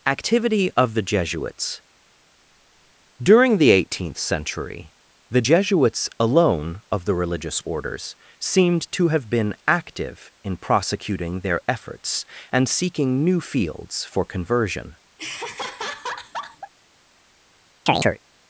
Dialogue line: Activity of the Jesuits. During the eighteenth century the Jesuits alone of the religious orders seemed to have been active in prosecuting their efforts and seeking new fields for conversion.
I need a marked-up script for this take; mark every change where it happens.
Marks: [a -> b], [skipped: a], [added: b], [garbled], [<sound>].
Activity of the Jesuits. During the eighteenth century the Jesuits alone of the religious orders seemed to have been active in prosecuting their efforts and seeking new fields for conversion. [laugh] [chirp]